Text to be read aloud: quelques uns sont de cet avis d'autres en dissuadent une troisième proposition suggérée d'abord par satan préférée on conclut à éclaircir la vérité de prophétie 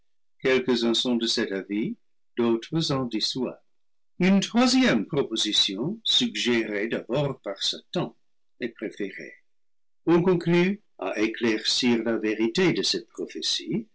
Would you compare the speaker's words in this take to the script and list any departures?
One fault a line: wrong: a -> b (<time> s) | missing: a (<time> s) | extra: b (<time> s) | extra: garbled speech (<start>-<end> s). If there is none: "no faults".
extra: est (8.6 s)
extra: cette (12.8 s)